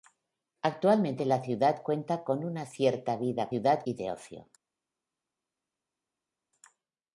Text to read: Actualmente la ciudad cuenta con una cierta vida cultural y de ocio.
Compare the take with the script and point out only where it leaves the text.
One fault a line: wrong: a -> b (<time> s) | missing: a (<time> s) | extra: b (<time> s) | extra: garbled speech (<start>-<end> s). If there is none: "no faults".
wrong: cultural -> ciudad (3.5 s)